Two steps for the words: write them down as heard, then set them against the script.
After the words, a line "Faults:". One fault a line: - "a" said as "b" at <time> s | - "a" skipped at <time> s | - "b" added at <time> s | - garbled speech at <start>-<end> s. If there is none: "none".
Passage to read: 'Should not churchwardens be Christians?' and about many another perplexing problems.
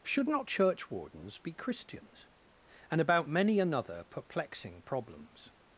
'Should not churchwardens be Christians?' and about many another perplexing problems.
Faults:
none